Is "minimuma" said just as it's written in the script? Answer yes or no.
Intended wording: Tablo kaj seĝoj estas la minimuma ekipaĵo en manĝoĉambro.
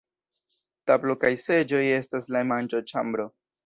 no